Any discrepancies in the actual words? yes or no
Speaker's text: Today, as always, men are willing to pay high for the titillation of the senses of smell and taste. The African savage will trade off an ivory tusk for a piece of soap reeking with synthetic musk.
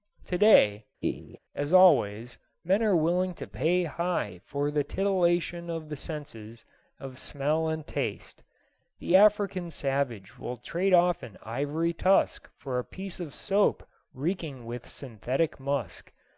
no